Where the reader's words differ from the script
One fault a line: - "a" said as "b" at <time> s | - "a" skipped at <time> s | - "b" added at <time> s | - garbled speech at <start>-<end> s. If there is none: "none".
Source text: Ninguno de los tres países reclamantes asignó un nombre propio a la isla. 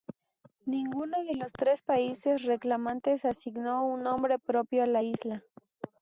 none